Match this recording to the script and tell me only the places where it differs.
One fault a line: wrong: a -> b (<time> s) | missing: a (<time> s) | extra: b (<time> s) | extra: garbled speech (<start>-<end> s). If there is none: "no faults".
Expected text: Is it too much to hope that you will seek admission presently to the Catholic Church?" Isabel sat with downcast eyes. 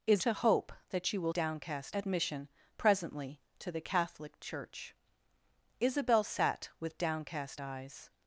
missing: it too much (0.2 s)
wrong: seek -> downcast (1.3 s)